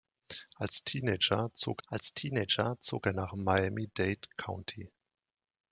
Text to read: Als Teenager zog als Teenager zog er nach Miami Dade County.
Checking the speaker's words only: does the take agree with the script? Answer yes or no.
yes